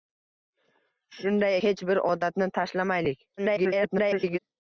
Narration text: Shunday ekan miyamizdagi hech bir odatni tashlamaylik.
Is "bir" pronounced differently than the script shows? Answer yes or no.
no